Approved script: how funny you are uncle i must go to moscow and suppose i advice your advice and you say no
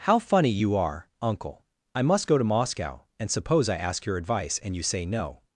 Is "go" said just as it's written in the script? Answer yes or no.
yes